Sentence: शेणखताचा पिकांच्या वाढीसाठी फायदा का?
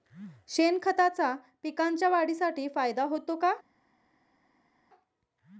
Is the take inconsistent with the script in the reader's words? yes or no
yes